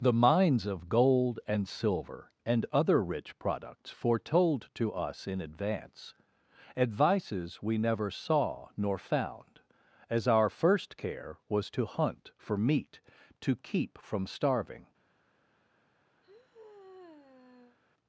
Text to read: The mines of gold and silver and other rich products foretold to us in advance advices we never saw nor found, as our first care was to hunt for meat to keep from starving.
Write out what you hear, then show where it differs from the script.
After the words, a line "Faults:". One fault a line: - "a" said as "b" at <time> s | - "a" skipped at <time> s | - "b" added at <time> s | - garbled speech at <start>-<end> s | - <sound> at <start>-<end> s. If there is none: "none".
The mines of gold and silver and other rich products foretold to us in advance advices we never saw nor found, as our first care was to hunt for meat to keep from starving.
Faults:
- sigh at 16.2-17.8 s